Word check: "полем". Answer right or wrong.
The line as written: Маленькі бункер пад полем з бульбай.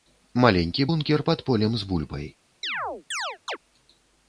right